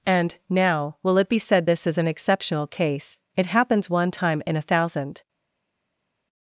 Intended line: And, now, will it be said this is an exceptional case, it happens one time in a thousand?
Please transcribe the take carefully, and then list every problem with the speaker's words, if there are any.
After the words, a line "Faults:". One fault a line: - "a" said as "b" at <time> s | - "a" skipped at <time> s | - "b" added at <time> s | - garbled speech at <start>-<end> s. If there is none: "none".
And, now, will it be said this is an exceptional case, it happens one time in a thousand?
Faults:
none